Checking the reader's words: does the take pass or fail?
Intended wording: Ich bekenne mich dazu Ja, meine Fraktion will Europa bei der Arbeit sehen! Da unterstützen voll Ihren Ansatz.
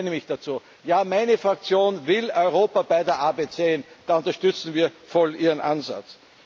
fail